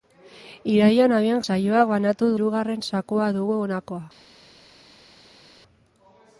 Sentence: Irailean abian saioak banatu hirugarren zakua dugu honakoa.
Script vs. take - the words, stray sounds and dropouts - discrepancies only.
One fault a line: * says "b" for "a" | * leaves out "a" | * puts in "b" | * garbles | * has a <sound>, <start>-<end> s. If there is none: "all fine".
all fine